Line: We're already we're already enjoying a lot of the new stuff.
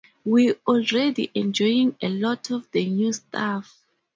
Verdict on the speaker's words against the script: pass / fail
fail